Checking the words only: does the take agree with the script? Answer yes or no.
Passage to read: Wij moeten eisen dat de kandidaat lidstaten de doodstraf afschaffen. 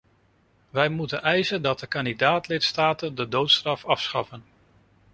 yes